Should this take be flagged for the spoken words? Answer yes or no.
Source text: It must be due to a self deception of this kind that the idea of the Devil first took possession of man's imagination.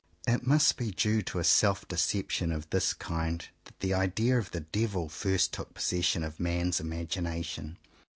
no